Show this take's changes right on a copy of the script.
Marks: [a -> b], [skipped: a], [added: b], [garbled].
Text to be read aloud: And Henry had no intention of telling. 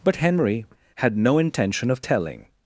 [And -> But] Henry had no intention of telling.